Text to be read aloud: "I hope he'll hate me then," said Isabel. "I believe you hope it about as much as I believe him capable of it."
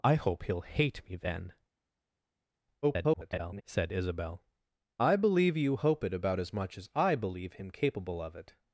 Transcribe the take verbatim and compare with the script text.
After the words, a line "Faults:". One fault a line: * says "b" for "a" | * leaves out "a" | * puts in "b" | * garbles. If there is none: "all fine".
"I hope he'll hate me then," [garbled] said Isabel. "I believe you hope it about as much as I believe him capable of it."
Faults:
* garbles